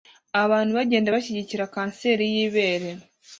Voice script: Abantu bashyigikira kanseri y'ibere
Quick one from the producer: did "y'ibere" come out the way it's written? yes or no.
yes